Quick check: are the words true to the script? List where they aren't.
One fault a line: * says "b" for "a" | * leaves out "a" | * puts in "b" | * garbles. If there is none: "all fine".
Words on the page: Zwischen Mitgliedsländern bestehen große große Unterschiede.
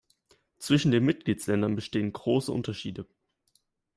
* puts in "den"
* leaves out "große"